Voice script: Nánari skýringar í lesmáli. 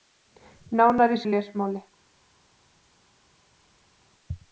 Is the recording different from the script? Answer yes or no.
yes